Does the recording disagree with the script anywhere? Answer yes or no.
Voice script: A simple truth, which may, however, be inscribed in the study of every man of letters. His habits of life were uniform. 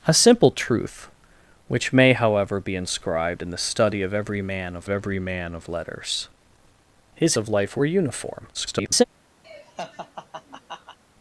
yes